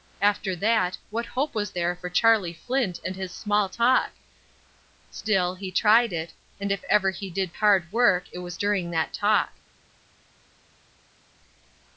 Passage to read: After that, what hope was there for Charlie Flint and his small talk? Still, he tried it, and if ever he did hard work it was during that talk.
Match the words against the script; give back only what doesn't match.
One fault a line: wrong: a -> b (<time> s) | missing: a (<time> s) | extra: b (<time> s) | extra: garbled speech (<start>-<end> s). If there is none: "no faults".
no faults